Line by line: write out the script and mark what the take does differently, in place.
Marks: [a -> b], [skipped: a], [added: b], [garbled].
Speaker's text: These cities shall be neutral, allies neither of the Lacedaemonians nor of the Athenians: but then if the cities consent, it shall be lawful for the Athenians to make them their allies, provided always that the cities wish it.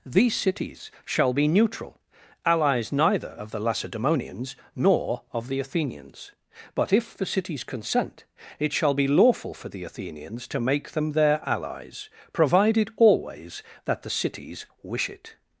These cities shall be neutral, allies neither of the Lacedaemonians nor of the Athenians: but [skipped: then] if the cities consent, it shall be lawful for the Athenians to make them their allies, provided always that the cities wish it.